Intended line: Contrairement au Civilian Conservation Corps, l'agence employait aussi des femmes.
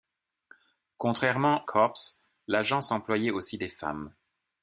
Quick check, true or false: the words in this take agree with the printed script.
false